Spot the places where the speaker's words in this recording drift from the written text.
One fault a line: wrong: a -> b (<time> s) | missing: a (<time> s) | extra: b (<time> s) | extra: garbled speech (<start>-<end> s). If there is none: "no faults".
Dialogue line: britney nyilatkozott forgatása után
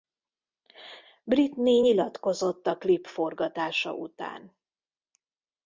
extra: a klip (2.7 s)